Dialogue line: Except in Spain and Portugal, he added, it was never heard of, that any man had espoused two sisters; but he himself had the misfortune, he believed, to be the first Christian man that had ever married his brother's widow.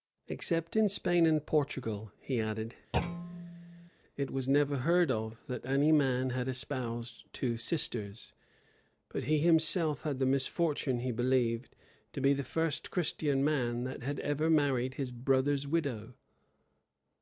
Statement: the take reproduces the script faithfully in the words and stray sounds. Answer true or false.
false